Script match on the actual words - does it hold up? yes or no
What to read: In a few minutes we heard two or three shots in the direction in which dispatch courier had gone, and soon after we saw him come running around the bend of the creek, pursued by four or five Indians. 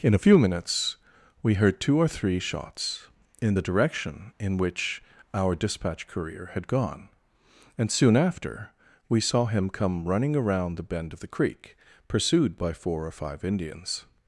no